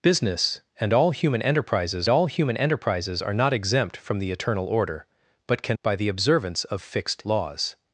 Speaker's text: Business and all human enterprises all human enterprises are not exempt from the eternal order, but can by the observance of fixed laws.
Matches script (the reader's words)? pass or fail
pass